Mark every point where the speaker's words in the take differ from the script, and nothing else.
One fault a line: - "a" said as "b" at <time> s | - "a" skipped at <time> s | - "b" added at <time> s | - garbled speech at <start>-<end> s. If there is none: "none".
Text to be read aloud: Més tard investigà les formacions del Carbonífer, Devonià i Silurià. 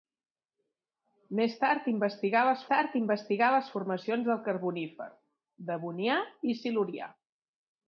- "tard investigà les" added at 2.7 s